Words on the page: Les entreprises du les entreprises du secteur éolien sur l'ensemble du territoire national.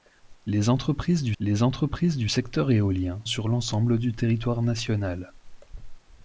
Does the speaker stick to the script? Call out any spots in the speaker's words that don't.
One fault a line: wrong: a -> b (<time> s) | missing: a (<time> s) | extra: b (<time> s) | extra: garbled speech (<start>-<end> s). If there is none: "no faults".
no faults